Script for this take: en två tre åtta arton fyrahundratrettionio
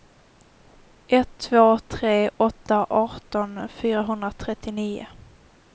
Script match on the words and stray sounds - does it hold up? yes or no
no